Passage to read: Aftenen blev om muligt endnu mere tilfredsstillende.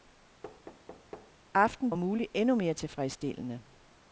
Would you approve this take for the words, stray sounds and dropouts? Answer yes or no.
no